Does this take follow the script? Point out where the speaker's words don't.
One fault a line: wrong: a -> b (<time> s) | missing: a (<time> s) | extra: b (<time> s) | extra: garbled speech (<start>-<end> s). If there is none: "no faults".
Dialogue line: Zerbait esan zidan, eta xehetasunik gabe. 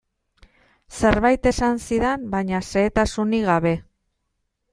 wrong: eta -> baina (2.4 s)